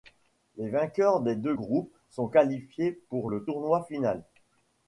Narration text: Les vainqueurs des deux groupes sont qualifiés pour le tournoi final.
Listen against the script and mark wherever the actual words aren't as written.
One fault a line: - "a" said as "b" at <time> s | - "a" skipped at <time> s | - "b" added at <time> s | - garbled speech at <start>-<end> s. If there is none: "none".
none